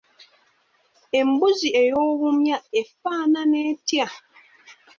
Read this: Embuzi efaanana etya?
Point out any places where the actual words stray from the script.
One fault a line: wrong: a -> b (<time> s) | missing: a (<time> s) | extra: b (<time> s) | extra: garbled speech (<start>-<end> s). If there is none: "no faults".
extra: ey'obumya (1.8 s)